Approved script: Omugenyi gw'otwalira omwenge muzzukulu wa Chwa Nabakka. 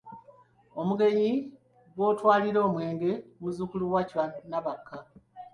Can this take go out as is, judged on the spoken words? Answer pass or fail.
pass